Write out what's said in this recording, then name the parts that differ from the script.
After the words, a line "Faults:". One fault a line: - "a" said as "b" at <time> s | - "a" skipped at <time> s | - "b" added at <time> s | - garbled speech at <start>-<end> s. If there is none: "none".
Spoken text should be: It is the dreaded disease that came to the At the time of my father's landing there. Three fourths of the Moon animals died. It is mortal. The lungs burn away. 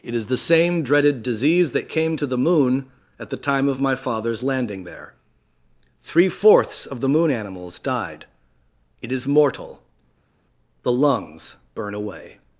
It is the same dreaded disease that came to the Moon at the time of my father's landing there. Three fourths of the Moon animals died. It is mortal. The lungs burn away.
Faults:
- "same" added at 0.4 s
- "Moon" added at 2.4 s